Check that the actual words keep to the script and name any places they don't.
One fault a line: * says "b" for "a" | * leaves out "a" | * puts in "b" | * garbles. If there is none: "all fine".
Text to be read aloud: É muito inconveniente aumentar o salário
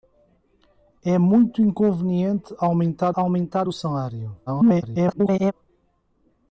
* puts in "aumentar"
* garbles